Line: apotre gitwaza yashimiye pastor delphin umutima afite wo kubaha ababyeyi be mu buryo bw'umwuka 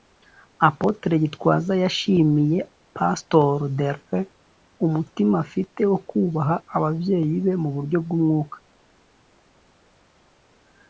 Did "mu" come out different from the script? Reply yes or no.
no